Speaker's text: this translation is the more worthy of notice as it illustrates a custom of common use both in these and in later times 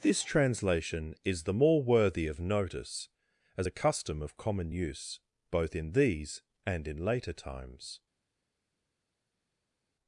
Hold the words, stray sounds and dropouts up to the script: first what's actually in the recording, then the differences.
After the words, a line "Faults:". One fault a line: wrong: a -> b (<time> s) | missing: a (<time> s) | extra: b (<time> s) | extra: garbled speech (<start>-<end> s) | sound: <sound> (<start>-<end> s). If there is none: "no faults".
this translation is the more worthy of notice as a custom of common use both in these and in later times
Faults:
missing: it illustrates (3.7 s)